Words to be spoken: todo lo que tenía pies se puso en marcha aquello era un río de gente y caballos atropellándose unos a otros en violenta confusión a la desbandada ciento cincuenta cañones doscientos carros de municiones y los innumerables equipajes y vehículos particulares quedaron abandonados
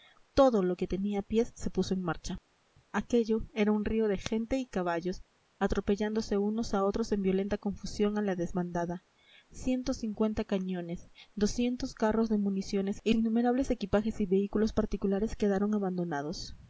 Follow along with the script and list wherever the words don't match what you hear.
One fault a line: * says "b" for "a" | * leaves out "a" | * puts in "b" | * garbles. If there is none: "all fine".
* leaves out "los"